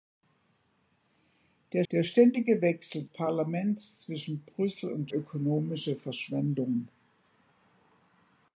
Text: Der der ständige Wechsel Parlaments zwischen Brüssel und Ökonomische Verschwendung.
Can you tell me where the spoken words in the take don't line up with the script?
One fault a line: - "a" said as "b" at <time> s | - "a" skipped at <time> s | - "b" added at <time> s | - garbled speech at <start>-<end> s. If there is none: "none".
none